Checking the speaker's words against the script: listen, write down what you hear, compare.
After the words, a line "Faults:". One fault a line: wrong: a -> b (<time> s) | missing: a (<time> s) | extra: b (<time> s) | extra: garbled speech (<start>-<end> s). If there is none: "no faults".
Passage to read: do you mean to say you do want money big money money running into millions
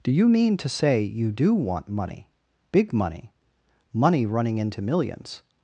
do you mean to say you do want money big money money running into millions
Faults:
no faults